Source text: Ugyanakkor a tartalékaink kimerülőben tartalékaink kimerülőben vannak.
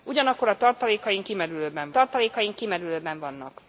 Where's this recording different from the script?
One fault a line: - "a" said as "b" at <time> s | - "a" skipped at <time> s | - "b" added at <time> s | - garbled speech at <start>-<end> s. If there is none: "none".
none